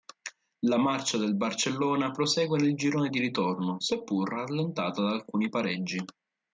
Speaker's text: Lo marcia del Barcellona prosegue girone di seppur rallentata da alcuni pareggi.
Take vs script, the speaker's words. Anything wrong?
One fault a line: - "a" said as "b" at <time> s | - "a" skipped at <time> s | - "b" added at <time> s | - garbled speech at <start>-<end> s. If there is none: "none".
- "Lo" said as "La" at 0.6 s
- "nel" added at 2.6 s
- "ritorno" added at 3.2 s